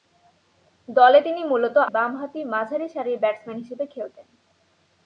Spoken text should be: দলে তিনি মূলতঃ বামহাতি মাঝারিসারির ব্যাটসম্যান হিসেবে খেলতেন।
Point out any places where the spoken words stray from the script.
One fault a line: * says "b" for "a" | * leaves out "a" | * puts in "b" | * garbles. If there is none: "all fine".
all fine